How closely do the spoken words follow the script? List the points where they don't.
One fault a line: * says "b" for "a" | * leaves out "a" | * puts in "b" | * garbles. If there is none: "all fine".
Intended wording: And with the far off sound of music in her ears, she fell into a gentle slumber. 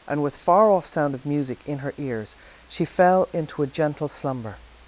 * leaves out "the"